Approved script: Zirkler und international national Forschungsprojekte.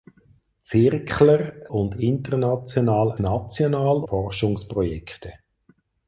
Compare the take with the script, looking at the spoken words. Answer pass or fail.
pass